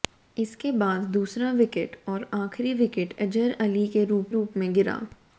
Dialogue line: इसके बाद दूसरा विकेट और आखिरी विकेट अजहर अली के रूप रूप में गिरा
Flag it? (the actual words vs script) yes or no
no